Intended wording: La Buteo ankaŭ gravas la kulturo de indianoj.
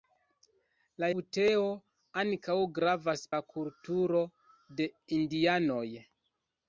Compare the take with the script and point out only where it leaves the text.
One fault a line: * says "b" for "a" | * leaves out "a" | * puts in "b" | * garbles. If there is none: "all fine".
all fine